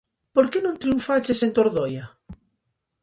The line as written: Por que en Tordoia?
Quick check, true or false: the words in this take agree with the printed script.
false